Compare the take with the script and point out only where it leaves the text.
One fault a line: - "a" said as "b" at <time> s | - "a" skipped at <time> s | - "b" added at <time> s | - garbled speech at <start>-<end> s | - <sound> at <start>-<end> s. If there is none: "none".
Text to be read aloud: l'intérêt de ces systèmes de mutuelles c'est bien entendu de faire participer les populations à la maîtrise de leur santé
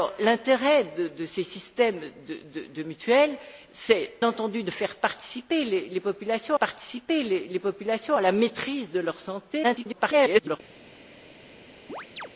- "bien" skipped at 4.1 s
- "participer les populations" added at 6.5 s
- garbled speech at 9.6-10.6 s
- chirp at 11.9-12.3 s